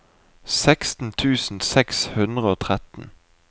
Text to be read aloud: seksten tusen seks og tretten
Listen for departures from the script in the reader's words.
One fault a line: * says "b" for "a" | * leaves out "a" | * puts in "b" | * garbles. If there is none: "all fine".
* puts in "hundre"